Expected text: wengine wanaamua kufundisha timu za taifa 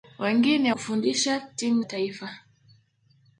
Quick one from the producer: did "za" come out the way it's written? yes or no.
no